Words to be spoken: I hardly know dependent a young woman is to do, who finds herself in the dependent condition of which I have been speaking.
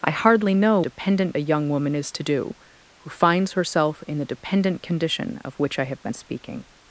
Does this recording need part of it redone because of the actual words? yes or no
no